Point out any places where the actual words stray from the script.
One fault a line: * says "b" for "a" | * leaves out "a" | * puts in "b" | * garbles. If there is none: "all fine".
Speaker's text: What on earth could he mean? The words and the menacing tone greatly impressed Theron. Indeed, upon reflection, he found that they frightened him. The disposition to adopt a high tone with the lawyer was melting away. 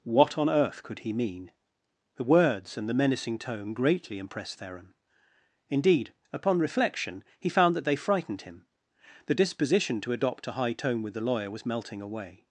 all fine